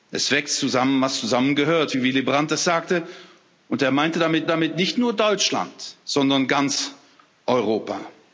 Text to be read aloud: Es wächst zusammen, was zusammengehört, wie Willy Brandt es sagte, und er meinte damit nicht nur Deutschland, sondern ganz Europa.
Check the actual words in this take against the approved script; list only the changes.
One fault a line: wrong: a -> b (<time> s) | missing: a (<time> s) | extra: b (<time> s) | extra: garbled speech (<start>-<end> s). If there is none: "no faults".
extra: damit (4.5 s)